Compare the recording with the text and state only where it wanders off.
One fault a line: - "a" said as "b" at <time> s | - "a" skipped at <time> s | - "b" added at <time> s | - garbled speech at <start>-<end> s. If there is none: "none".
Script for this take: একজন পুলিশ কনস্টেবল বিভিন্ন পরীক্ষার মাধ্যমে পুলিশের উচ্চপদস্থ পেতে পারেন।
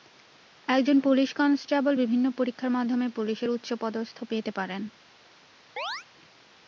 none